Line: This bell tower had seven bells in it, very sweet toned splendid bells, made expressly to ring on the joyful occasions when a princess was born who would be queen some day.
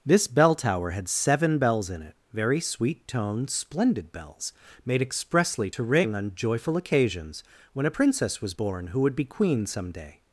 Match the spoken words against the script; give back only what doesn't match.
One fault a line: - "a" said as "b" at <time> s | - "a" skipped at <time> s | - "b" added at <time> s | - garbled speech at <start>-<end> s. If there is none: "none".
- "the" skipped at 6.3 s